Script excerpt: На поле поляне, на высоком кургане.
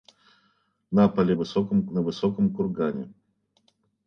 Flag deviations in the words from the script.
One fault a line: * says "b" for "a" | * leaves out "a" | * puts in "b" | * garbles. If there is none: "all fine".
* says "высоком" for "поляне"